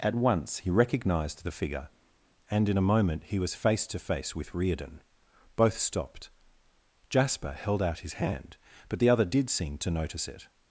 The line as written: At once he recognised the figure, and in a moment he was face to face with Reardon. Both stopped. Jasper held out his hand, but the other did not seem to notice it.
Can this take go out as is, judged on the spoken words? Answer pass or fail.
fail